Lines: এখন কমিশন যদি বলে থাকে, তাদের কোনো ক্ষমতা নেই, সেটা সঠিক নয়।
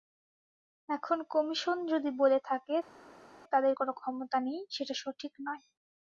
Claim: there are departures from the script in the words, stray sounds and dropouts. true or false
false